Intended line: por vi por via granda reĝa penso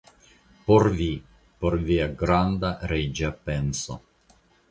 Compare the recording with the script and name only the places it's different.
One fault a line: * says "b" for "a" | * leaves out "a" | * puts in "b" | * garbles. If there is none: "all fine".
all fine